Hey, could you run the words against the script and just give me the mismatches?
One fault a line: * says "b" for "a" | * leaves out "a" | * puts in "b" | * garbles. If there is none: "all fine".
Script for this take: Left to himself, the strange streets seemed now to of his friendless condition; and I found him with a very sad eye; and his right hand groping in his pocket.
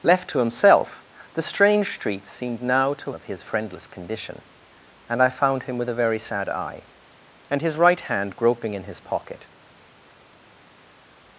all fine